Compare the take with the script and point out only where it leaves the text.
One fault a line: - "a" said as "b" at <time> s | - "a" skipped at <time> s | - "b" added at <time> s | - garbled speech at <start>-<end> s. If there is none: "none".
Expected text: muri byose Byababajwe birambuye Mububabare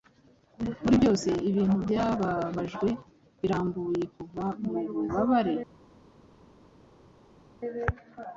- "Ibintu" added at 1.5 s
- "Kuva" added at 4.2 s